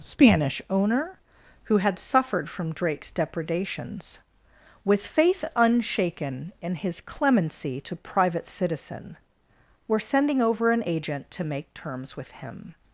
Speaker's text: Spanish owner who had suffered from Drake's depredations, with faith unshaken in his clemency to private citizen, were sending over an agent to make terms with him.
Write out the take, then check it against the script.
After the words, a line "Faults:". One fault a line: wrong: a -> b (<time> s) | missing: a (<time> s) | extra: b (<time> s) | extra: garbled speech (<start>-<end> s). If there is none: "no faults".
Spanish owner who had suffered from Drake's depredations, with faith unshaken in his clemency to private citizen, were sending over an agent to make terms with him.
Faults:
no faults